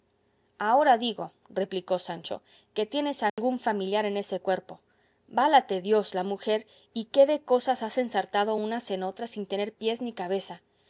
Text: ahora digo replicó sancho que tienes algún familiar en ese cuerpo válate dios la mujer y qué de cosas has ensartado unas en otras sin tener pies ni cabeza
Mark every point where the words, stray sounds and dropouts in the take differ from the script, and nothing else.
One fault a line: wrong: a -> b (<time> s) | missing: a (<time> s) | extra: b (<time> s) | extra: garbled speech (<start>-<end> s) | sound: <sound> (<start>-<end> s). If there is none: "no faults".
sound: dropout (3.3-3.4 s)